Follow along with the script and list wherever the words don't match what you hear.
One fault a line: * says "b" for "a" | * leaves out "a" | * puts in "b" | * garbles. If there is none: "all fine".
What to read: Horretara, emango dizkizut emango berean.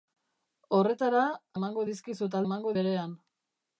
all fine